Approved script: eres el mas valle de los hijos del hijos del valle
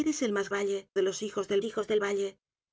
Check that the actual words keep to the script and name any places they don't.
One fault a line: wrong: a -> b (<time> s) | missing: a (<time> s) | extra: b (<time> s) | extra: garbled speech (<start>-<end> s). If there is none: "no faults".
no faults